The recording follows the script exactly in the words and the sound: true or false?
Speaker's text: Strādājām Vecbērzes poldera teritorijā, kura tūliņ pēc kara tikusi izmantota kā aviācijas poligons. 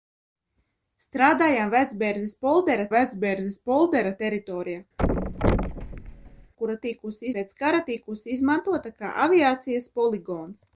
false